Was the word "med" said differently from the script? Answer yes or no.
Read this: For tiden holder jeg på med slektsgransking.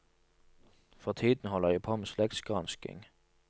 no